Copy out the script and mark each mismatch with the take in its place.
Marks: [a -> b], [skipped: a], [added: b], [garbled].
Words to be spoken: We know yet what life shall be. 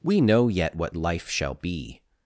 We know yet what life shall be.